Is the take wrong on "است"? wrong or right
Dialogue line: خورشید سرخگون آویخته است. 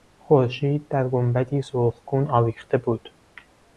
wrong